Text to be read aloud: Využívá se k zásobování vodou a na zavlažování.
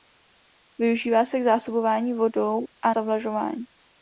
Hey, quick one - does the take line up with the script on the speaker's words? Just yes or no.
no